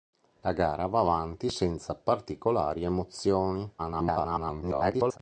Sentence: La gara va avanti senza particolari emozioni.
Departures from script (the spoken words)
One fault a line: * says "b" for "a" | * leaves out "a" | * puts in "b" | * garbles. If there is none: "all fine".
* garbles